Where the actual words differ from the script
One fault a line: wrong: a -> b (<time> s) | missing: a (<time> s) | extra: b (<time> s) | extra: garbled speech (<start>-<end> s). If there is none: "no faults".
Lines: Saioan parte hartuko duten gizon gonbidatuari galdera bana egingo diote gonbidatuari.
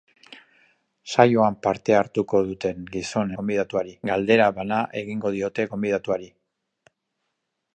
no faults